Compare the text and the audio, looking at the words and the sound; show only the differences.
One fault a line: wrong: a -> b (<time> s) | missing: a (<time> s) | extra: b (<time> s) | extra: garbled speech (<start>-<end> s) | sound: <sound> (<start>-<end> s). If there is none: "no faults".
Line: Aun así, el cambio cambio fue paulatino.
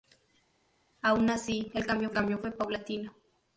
no faults